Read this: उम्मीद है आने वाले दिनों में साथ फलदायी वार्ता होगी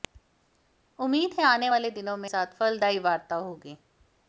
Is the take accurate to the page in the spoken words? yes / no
yes